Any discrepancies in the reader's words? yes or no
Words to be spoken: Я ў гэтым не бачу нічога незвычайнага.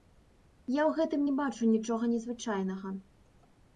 no